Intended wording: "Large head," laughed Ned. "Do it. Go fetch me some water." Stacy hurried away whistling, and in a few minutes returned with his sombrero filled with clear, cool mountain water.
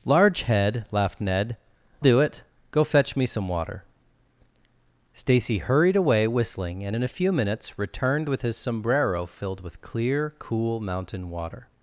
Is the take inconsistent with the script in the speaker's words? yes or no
no